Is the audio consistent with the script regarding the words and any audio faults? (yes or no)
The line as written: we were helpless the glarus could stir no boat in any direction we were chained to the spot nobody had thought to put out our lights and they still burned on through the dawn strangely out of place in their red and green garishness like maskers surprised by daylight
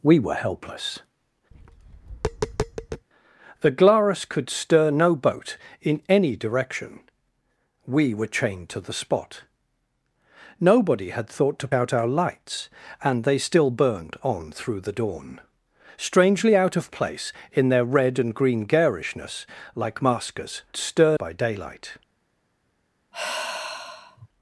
no